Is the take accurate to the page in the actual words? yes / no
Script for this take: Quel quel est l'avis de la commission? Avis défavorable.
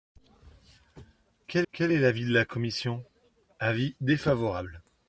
yes